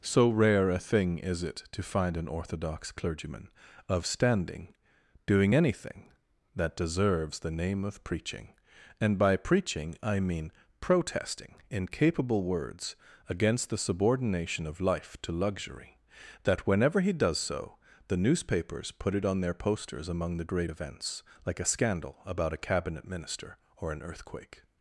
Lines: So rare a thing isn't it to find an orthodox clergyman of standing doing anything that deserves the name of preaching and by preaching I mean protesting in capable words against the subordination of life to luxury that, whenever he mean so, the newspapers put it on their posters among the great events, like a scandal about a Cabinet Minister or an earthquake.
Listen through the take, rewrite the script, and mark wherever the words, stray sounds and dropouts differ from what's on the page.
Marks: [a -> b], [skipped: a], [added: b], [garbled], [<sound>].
So rare a thing [isn't -> is] it to find an orthodox clergyman of standing doing anything that deserves the name of preaching and by preaching I mean protesting in capable words against the subordination of life to luxury that, whenever he [mean -> does] so, the newspapers put it on their posters among the great events, like a scandal about a Cabinet Minister or an earthquake.